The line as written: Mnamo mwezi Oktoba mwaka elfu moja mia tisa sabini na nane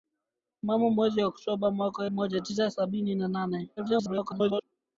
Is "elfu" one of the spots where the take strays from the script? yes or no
yes